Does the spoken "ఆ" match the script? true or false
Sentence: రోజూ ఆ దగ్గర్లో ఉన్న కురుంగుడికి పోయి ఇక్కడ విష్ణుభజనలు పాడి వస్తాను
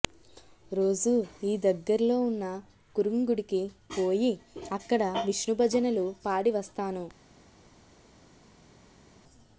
false